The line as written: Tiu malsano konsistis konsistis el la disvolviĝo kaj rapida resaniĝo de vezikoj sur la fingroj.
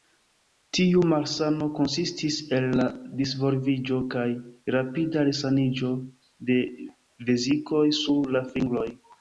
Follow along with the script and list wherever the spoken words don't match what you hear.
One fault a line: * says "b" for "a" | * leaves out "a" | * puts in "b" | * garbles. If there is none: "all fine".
* leaves out "konsistis"